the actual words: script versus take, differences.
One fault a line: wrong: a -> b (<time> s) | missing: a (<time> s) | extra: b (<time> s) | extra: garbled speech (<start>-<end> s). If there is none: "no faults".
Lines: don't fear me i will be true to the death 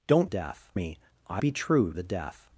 wrong: fear -> death (0.2 s)
missing: will (1.4 s)
missing: to (1.9 s)